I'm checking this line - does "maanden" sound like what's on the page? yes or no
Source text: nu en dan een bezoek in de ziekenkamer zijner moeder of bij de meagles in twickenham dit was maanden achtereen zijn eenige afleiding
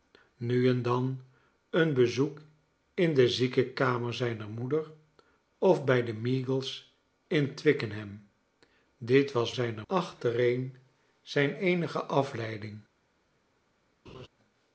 no